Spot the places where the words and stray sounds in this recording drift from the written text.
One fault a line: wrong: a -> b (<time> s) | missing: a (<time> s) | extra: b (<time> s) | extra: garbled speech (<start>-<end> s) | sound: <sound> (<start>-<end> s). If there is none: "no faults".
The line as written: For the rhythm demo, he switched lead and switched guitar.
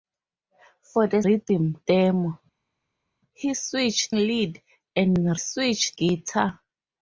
no faults